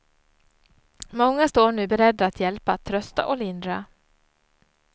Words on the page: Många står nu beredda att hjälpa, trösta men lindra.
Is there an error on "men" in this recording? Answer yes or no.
yes